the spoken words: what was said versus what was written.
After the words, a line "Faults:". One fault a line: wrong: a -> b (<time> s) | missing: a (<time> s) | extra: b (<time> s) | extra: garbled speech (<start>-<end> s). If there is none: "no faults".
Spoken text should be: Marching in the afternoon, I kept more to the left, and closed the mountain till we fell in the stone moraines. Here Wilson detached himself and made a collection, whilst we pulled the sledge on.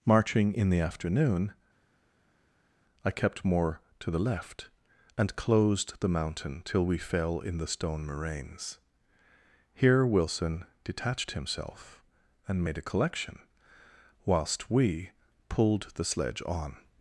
Marching in the afternoon, I kept more to the left, and closed the mountain till we fell in the stone moraines. Here Wilson detached himself and made a collection, whilst we pulled the sledge on.
Faults:
no faults